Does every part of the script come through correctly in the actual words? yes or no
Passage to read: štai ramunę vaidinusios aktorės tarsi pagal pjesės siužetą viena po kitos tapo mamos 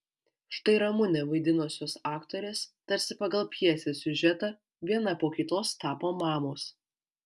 yes